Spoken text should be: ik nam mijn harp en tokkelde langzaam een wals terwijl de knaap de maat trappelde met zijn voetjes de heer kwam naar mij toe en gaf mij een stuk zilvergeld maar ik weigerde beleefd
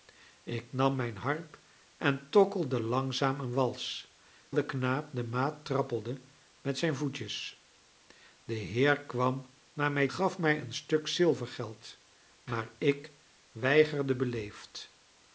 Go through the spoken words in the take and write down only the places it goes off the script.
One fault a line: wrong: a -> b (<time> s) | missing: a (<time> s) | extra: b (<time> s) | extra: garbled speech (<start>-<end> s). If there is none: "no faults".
missing: terwijl (4.2 s)
missing: toe en (10.1 s)